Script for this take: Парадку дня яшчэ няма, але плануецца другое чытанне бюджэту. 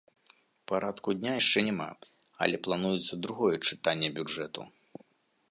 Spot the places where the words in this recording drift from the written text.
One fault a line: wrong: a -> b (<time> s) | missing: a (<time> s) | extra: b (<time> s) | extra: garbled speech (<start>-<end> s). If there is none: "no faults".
no faults